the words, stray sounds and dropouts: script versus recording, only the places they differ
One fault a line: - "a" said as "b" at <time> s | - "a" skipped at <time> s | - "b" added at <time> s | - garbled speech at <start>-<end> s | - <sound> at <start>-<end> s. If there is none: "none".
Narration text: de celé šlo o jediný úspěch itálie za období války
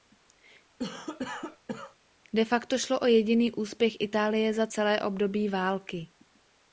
- cough at 0.8-2.0 s
- "celé" said as "facto" at 2.5 s
- "celé" added at 4.7 s